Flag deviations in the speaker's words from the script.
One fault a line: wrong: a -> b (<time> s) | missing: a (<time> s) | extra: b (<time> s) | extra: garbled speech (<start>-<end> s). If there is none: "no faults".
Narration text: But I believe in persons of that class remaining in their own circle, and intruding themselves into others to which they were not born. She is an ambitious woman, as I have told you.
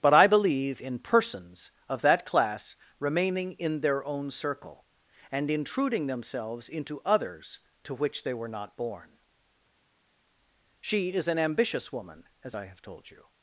no faults